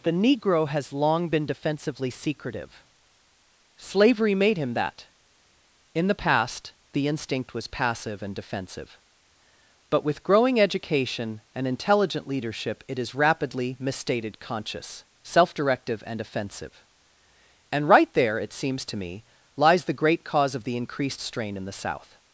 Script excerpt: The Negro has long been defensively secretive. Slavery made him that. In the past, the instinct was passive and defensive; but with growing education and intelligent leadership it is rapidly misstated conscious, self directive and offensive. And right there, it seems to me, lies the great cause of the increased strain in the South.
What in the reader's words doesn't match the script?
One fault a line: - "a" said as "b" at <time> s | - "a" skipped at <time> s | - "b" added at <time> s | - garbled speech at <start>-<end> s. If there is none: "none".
none